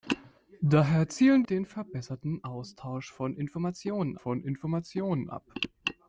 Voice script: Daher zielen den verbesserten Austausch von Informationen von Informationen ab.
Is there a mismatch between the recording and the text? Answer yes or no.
no